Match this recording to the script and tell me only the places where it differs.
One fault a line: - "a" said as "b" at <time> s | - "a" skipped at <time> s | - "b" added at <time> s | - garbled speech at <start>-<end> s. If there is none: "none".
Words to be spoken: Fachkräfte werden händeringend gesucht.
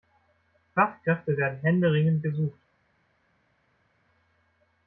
none